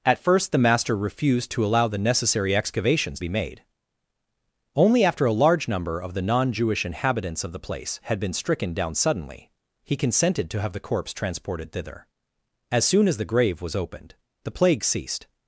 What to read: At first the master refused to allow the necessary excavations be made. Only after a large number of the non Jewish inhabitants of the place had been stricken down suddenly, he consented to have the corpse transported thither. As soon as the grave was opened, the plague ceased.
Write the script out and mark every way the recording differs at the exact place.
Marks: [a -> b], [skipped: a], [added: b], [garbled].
At first the master refused to allow the necessary excavations be made. Only after a large number of the non Jewish inhabitants of the place had been stricken down suddenly, he consented to have the corpse transported thither. As soon as the grave was opened, the plague ceased.